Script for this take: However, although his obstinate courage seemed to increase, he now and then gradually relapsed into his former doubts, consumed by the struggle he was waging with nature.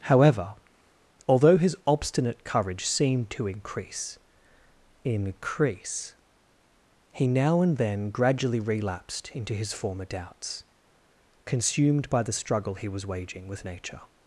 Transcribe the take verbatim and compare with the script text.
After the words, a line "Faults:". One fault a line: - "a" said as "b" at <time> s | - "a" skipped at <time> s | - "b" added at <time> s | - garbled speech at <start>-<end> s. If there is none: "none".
However, although his obstinate courage seemed to increase increase, he now and then gradually relapsed into his former doubts, consumed by the struggle he was waging with nature.
Faults:
- "increase" added at 5.0 s